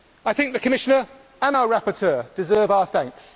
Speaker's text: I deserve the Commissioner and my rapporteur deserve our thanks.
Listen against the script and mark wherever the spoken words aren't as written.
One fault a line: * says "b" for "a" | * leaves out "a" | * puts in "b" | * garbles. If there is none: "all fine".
* says "think" for "deserve"
* says "our" for "my"